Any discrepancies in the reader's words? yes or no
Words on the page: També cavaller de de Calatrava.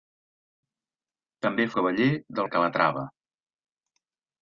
no